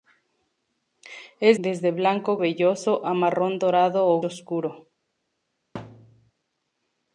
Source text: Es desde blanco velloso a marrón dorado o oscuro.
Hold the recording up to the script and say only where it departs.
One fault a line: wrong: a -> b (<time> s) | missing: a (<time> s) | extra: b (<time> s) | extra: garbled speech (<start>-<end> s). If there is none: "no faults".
no faults